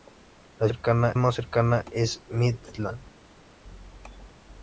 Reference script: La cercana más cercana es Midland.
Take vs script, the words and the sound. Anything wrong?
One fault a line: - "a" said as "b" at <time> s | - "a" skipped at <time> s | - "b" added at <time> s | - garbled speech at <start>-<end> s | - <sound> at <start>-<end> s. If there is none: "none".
none